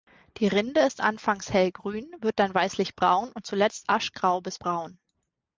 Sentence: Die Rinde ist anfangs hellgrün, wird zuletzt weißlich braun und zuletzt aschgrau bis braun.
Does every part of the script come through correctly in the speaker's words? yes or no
no